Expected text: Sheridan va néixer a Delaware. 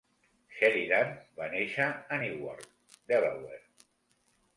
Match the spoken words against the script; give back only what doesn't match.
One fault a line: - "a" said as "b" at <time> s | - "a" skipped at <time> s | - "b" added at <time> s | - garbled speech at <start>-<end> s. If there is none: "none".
- "Newark" added at 2.2 s